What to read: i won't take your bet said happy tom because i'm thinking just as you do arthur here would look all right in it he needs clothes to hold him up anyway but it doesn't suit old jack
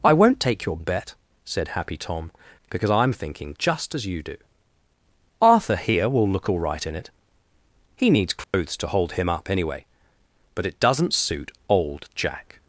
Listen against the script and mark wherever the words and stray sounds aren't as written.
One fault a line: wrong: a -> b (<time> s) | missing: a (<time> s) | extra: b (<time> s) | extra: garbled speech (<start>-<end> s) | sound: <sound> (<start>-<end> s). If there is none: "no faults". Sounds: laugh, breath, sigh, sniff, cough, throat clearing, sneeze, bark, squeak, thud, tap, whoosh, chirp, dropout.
wrong: would -> will (6.1 s)
sound: dropout (8.4-8.5 s)